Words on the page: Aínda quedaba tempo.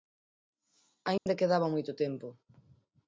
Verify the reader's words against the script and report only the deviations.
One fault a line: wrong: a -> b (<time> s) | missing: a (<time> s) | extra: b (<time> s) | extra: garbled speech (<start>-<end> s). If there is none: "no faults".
extra: moito (1.7 s)